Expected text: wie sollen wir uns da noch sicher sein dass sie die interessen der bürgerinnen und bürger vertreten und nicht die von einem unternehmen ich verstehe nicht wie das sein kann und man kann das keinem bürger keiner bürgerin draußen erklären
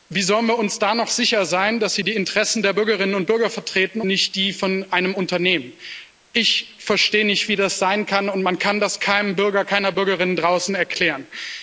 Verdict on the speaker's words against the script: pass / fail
fail